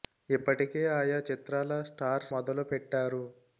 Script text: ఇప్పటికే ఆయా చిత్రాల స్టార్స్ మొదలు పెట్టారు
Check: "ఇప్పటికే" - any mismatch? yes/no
no